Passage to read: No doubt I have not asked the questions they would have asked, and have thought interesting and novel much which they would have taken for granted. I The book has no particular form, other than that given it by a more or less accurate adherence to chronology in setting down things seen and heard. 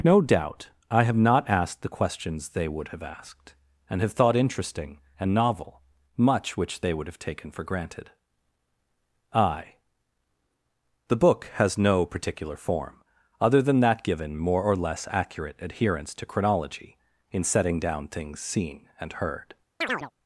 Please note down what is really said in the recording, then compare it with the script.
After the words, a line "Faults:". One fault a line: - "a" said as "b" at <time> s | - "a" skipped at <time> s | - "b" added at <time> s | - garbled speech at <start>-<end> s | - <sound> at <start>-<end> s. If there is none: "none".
No doubt I have not asked the questions they would have asked, and have thought interesting and novel much which they would have taken for granted. I The book has no particular form, other than that given more or less accurate adherence to chronology in setting down things seen and heard.
Faults:
- "it by a" skipped at 14.4 s
- chirp at 19.8-20.1 s